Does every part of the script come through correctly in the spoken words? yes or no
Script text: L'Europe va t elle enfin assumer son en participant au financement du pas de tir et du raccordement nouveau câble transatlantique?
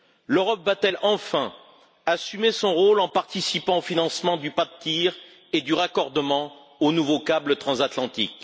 no